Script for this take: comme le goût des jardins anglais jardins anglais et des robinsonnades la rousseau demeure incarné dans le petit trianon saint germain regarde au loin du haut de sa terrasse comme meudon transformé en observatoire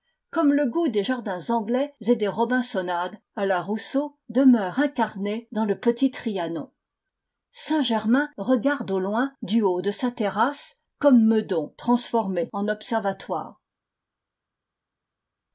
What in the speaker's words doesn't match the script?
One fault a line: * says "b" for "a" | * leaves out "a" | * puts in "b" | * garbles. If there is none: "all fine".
* leaves out "jardins anglais"
* puts in "à"